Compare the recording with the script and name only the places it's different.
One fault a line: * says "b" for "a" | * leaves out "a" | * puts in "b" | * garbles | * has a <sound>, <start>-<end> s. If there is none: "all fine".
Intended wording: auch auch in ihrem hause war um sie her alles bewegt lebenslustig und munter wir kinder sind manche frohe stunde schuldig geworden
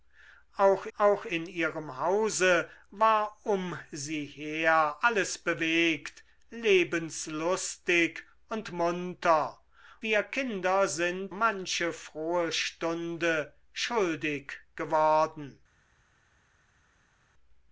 all fine